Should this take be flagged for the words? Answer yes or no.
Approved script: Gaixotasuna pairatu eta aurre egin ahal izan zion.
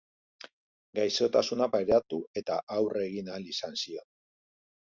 no